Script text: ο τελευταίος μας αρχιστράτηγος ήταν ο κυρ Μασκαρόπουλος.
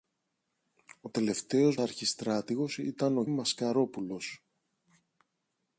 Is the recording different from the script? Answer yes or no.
yes